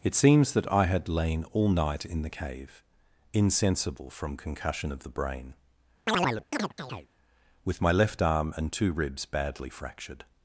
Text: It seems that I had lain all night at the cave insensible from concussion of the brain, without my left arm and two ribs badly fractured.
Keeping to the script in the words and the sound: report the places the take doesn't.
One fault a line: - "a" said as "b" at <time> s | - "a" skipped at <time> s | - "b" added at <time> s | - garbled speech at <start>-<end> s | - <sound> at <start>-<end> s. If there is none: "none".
- "at" said as "in" at 2.0 s
- chirp at 6.1-7.1 s
- "without" said as "with" at 7.6 s